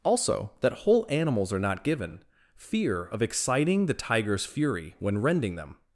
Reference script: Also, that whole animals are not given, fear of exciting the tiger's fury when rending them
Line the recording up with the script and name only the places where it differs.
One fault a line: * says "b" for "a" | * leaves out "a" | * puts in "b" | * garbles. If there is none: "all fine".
all fine